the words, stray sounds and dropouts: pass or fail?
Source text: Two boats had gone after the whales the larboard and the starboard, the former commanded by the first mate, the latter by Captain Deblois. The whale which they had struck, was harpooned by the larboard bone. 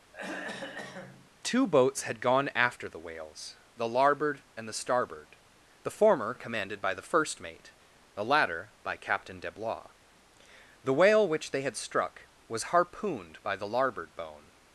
fail